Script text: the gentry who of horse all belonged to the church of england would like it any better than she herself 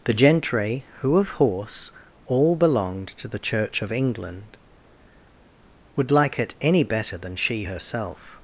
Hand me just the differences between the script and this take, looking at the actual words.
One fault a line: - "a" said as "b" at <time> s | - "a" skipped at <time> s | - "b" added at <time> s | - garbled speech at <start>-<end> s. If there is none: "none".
none